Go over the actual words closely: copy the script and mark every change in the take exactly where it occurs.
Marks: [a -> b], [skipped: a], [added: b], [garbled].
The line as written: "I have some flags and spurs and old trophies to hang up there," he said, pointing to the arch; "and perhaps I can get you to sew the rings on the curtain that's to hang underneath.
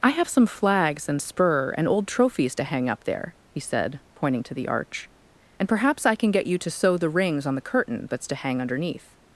"I have some flags and [spurs -> spur] and old trophies to hang up there," he said, pointing to the arch; "and perhaps I can get you to sew the rings on the curtain that's to hang underneath.